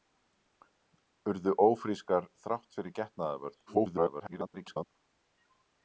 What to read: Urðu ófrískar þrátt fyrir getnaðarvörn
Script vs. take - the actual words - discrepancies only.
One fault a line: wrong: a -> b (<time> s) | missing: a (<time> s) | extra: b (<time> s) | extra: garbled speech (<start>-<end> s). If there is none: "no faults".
extra: garbled speech (3.7-4.9 s)